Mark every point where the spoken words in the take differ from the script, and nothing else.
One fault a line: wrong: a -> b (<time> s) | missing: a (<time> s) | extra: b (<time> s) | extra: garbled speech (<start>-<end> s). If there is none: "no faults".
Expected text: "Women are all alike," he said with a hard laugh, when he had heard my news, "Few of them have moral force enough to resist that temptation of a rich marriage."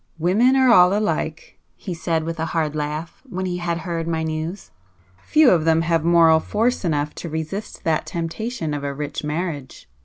no faults